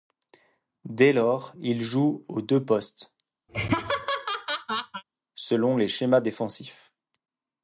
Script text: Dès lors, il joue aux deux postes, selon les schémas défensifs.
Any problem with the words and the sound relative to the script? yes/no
yes